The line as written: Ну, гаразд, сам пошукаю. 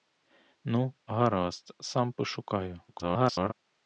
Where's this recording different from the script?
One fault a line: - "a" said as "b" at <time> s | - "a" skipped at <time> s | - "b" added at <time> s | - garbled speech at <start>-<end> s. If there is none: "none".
- garbled speech at 2.9-3.5 s